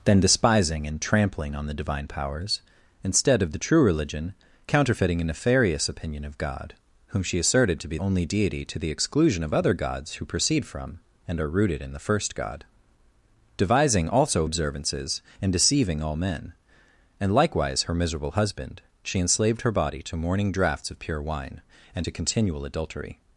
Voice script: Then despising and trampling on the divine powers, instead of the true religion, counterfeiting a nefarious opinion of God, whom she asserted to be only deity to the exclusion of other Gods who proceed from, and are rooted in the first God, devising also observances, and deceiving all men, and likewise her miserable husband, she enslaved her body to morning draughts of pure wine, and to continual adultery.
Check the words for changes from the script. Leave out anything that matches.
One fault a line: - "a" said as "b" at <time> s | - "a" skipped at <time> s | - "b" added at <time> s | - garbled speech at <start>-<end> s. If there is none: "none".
none